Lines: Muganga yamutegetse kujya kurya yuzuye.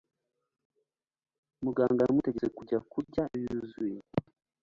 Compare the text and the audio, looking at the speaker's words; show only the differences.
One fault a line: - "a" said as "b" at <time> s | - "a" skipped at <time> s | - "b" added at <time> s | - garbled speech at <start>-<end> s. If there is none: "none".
none